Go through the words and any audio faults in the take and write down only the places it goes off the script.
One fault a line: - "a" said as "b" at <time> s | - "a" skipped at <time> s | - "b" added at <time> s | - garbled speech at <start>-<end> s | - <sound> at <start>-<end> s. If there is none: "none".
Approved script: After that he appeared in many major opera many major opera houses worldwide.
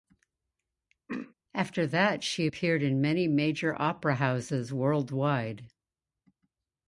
- throat clearing at 1.1-1.3 s
- "he" said as "she" at 2.2 s
- "many major opera" skipped at 4.1 s